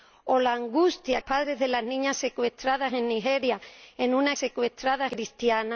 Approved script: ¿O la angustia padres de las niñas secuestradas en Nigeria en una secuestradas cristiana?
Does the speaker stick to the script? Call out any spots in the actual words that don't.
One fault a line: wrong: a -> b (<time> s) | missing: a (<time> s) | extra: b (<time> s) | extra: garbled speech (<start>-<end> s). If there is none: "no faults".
no faults